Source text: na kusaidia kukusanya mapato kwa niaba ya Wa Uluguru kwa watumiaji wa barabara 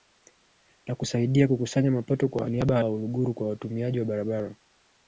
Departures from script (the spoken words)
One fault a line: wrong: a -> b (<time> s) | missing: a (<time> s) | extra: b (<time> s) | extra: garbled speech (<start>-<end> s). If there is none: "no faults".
no faults